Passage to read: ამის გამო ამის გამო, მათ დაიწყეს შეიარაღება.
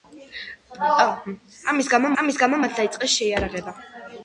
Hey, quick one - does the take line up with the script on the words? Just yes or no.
yes